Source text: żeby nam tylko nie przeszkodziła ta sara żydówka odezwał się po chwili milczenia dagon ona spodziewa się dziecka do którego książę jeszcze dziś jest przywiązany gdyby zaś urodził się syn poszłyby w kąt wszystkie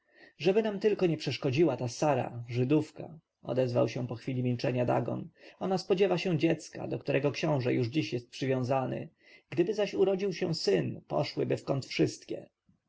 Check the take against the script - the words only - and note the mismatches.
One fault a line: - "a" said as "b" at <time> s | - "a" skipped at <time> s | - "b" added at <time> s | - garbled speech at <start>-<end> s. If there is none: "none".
- "jeszcze" said as "już" at 7.7 s